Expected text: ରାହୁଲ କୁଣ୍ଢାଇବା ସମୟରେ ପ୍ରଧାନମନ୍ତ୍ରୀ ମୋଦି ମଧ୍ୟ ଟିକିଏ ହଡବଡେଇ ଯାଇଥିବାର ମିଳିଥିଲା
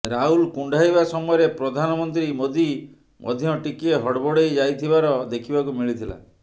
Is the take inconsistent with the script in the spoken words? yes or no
yes